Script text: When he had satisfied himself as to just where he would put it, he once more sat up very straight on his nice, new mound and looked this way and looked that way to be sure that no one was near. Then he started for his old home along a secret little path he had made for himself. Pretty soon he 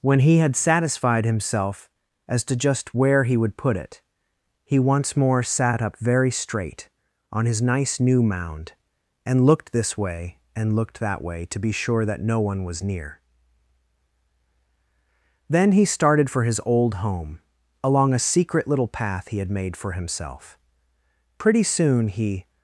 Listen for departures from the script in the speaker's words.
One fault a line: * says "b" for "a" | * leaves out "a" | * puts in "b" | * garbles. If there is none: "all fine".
all fine